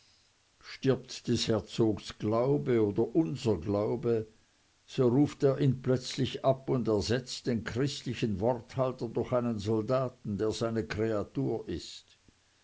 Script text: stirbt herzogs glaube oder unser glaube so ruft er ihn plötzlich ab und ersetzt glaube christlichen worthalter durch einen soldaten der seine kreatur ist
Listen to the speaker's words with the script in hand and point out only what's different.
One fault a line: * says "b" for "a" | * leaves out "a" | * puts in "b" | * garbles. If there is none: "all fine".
* puts in "des"
* says "den" for "glaube"